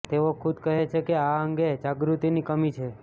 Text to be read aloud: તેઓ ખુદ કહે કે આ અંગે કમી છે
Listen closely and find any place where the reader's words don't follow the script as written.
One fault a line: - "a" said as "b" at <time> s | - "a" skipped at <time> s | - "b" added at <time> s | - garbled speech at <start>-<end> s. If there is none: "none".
- "છે" added at 0.9 s
- "જાગૃતિની" added at 1.8 s